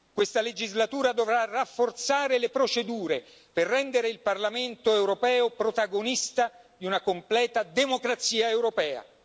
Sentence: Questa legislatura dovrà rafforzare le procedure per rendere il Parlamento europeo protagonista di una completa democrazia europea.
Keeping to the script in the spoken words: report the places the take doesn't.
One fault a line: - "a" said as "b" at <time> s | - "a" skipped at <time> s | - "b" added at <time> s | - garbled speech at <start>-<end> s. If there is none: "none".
none